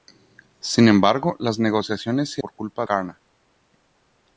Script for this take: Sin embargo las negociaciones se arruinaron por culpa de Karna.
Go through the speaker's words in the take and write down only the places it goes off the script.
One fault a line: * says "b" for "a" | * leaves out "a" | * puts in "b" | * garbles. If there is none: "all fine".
* leaves out "arruinaron"
* leaves out "de"